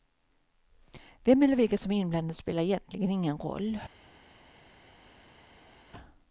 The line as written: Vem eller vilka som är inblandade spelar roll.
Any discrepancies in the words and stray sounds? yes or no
yes